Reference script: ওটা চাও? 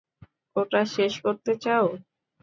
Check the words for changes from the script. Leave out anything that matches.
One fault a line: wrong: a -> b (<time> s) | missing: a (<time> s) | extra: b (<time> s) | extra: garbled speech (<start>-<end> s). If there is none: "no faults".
extra: শেষ করতে (0.9 s)